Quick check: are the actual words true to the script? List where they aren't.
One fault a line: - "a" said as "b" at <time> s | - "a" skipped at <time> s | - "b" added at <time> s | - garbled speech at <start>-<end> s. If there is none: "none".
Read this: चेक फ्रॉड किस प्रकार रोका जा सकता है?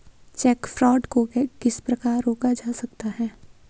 - "को" added at 1.0 s